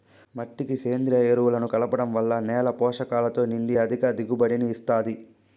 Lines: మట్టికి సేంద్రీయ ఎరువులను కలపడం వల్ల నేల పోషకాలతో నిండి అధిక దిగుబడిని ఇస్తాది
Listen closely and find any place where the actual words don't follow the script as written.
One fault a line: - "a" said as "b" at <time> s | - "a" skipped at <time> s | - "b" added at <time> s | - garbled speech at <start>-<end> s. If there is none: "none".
none